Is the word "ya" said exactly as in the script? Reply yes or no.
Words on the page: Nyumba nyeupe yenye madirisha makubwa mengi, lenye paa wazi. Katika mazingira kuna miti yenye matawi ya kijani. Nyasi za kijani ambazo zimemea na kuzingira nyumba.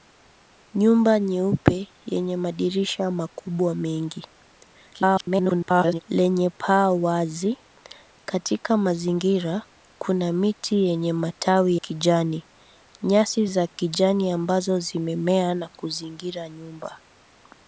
no